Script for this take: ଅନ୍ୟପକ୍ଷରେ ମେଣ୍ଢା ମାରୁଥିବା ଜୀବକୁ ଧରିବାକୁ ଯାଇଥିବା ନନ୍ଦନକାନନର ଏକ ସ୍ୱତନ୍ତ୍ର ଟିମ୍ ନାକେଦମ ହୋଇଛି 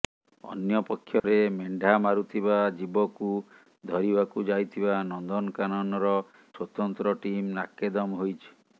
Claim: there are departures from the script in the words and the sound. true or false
true